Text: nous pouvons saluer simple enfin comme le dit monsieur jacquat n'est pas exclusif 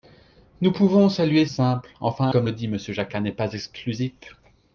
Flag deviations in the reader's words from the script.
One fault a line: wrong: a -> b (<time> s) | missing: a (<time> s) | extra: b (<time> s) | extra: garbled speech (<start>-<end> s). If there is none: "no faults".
no faults